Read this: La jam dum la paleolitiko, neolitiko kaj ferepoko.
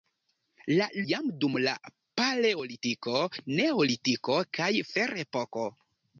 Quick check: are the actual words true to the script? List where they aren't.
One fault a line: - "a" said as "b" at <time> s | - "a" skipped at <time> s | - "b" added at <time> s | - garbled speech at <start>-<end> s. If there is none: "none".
none